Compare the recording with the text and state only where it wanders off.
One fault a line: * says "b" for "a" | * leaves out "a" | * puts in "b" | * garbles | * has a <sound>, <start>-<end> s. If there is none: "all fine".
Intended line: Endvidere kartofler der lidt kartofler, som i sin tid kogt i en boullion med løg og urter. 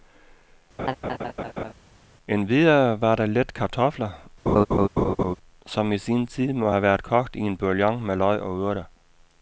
* has a laugh, 0.8-1.7 s
* says "var" for "kartofler"
* has a laugh, 4.5-5.4 s
* puts in "må have været"